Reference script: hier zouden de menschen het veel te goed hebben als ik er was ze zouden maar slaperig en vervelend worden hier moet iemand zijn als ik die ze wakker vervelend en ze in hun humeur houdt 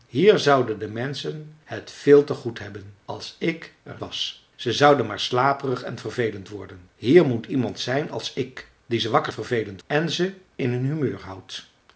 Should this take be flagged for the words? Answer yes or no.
no